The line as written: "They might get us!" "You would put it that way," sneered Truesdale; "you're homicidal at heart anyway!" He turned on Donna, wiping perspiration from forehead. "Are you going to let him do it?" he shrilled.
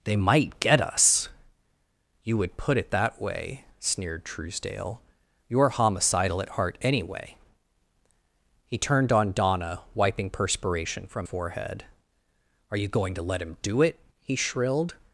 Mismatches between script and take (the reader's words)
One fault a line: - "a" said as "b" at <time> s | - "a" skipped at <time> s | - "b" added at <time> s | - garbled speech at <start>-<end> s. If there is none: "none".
none